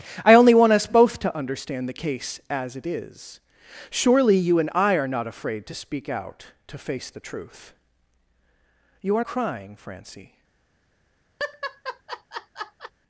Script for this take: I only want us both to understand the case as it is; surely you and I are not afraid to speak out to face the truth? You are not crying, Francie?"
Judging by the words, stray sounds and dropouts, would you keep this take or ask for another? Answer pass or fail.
fail